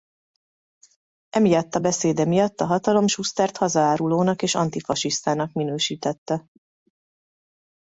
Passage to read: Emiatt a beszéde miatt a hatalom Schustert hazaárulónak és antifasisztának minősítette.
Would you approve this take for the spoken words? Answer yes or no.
yes